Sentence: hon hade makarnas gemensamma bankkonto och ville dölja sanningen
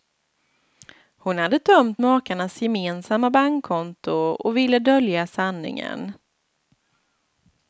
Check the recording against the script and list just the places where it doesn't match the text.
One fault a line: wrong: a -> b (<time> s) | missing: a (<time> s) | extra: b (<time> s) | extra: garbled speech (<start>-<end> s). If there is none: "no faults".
extra: tömt (1.6 s)